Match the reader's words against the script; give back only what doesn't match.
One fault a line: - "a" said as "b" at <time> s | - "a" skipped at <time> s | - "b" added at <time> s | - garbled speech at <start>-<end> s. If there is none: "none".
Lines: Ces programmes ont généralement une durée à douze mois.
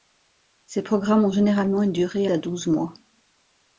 none